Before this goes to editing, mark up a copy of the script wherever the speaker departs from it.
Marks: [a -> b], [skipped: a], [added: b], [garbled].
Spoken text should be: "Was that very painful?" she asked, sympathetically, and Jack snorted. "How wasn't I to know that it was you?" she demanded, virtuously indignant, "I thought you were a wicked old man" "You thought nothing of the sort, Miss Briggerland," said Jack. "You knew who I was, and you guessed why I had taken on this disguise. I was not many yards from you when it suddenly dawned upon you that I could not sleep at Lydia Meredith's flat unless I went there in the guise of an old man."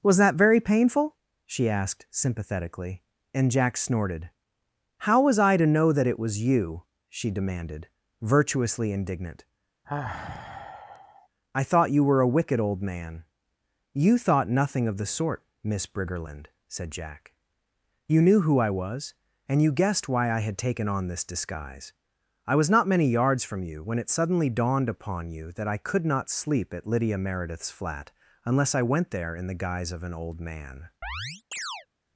"Was that very painful?" she asked, sympathetically, and Jack snorted. "How [wasn't -> was] I to know that it was you?" she demanded, virtuously indignant, "I thought you were a wicked old man" "You thought nothing of the sort, Miss Briggerland," said Jack. "You knew who I was, and you guessed why I had taken on this disguise. I was not many yards from you when it suddenly dawned upon you that I could not sleep at Lydia Meredith's flat unless I went there in the guise of an old man."